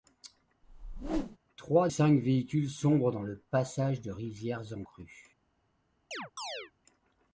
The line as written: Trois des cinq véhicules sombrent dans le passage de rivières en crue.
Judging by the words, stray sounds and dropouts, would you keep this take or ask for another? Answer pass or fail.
fail